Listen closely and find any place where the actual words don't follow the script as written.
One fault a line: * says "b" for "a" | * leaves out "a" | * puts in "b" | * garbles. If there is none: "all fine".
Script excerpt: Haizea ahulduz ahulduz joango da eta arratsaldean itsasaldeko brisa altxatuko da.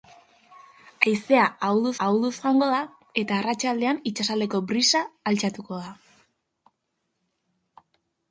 all fine